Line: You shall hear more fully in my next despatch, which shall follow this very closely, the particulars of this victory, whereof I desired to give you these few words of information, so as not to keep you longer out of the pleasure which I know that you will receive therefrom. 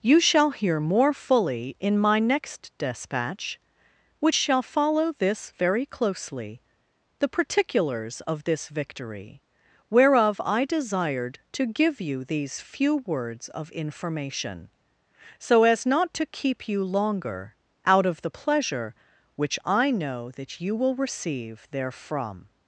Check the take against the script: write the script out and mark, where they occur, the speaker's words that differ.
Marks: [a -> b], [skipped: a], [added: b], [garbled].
You shall hear more fully in my next despatch, which shall follow this very closely, the particulars of this victory, whereof I desired to give you these few words of information, so as not to keep you longer out of the pleasure which I know that you will receive therefrom.